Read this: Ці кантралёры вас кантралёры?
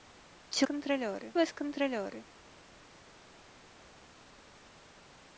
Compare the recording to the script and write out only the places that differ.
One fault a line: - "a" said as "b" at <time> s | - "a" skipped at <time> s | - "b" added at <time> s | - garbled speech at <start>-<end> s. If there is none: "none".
none